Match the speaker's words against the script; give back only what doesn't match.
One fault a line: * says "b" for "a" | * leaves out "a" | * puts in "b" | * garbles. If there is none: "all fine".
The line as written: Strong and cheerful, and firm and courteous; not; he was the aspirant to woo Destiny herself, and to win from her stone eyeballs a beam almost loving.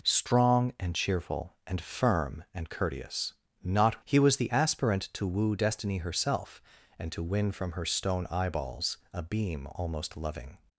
all fine